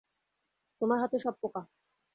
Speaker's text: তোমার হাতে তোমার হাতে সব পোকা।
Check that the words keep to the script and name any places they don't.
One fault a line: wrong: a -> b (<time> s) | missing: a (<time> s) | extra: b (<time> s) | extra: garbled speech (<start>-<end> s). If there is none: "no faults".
missing: তোমার হাতে (1.2 s)